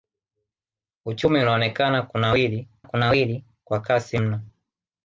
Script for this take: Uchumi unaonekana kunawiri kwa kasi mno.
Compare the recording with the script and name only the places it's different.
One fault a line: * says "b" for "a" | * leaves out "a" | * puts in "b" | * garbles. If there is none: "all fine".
* puts in "kunawiri"